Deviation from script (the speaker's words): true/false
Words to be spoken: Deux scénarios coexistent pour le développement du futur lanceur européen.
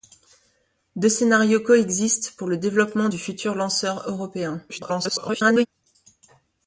true